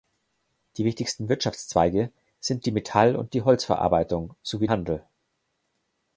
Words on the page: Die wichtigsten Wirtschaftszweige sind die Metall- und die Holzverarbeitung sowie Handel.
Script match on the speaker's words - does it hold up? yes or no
yes